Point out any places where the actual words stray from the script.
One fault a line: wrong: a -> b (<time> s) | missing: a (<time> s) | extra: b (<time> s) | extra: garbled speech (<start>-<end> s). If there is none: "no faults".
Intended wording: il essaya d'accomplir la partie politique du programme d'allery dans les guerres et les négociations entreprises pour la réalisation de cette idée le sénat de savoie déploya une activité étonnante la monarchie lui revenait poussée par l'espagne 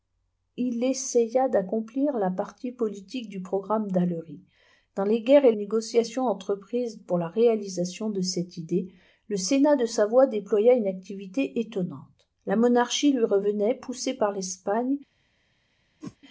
missing: les (5.5 s)